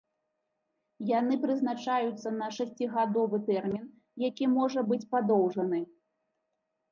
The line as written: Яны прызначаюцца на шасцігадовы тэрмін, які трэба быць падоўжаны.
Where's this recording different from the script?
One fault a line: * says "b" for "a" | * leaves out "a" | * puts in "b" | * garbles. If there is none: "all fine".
* says "можа" for "трэба"